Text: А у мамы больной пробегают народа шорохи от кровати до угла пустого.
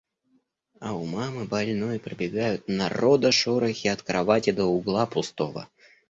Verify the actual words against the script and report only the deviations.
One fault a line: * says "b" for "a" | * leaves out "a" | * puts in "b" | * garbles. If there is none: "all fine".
all fine